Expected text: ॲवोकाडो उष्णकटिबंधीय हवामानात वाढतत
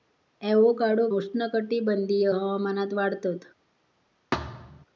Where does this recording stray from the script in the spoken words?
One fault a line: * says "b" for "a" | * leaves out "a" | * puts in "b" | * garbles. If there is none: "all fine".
all fine